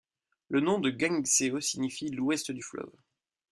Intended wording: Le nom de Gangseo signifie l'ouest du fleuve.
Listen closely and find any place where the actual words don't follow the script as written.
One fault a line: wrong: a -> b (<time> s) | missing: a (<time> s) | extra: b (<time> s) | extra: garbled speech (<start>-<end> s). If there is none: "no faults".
no faults